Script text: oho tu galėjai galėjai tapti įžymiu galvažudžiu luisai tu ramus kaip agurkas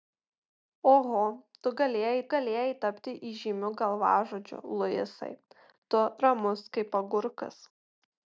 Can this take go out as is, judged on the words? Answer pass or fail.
pass